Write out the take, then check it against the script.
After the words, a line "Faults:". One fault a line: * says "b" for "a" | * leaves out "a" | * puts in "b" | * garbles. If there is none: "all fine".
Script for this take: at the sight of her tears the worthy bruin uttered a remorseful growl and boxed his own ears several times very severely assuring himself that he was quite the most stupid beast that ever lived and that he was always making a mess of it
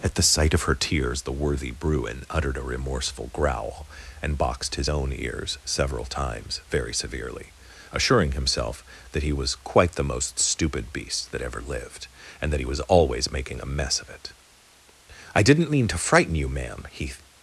at the sight of her tears the worthy bruin uttered a remorseful growl and boxed his own ears several times very severely assuring himself that he was quite the most stupid beast that ever lived and that he was always making a mess of it i didn't mean to frighten you ma'am he
Faults:
* puts in "i didn't mean to frighten you ma'am he"